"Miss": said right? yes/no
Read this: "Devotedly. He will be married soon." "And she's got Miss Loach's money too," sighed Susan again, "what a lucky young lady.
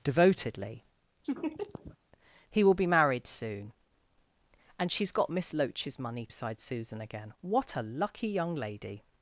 yes